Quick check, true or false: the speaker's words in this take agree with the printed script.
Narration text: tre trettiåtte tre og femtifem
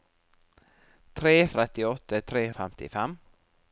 true